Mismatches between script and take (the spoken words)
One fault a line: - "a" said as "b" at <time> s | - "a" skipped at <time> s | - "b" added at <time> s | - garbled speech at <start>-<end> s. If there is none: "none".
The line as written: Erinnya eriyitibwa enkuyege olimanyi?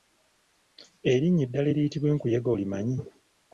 - "eddala" added at 1.4 s